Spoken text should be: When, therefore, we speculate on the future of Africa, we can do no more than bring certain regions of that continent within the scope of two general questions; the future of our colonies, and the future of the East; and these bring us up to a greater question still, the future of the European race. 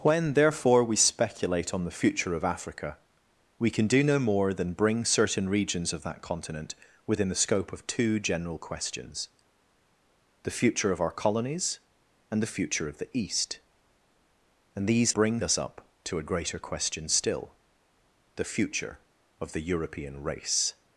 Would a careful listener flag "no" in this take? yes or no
no